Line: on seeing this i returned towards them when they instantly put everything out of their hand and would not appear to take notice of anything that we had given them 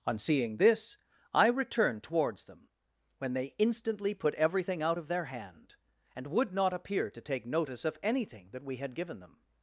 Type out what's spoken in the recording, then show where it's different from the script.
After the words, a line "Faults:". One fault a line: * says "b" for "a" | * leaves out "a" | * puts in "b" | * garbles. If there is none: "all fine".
on seeing this i returned towards them when they instantly put everything out of their hand and would not appear to take notice of anything that we had given them
Faults:
all fine